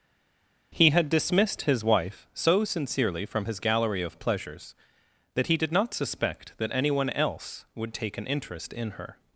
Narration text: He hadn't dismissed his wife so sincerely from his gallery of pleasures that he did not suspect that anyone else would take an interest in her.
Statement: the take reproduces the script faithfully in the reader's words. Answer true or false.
false